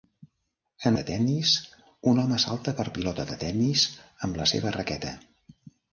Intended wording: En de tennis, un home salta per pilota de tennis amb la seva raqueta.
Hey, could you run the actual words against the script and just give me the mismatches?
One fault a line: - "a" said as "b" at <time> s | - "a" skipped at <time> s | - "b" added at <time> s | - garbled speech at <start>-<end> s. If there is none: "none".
none